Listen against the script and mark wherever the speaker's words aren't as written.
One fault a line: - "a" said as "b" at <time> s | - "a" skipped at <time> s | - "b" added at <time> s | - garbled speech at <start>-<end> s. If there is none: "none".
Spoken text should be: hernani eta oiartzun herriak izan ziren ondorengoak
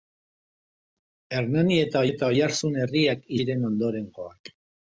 - "eta" added at 2.1 s
- "izan" skipped at 3.2 s